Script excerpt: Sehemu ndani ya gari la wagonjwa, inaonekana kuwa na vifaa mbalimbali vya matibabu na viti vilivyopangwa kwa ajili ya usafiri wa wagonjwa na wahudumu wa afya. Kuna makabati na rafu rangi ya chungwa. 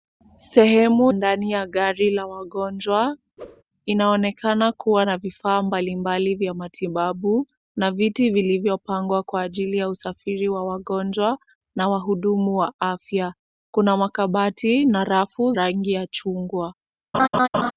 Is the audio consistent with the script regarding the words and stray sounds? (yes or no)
no